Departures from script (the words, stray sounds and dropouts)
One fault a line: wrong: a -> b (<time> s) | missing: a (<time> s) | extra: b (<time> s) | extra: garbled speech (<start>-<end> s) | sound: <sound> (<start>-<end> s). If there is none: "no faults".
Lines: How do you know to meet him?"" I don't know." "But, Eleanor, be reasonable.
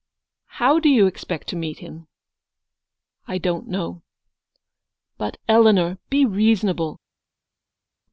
wrong: know -> expect (1.1 s)